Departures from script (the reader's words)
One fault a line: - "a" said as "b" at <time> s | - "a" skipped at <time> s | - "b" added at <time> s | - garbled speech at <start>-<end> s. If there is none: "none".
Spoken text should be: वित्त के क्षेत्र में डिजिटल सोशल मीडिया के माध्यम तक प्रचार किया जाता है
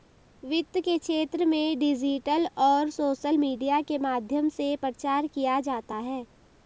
- "और" added at 2.6 s
- "तक" said as "से" at 4.5 s